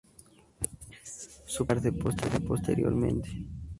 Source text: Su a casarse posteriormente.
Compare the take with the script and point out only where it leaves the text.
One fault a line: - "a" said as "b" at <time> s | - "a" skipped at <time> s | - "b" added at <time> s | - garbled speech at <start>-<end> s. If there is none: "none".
none